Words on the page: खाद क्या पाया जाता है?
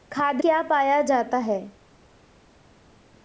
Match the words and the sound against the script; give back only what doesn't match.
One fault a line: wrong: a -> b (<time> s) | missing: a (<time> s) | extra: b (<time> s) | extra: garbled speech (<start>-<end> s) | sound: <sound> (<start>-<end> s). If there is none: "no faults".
no faults